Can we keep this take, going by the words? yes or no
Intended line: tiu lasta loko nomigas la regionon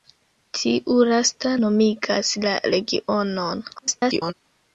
no